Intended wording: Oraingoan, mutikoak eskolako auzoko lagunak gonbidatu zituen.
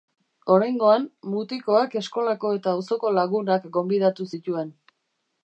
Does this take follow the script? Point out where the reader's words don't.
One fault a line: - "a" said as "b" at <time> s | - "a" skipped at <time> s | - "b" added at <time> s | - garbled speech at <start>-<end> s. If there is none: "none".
- "eta" added at 2.6 s